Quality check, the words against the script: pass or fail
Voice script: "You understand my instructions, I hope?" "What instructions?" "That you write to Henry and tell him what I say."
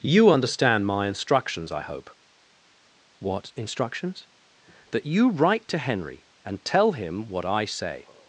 pass